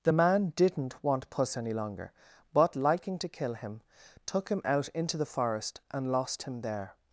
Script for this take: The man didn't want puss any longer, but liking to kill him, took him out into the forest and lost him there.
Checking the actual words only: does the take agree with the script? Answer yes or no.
yes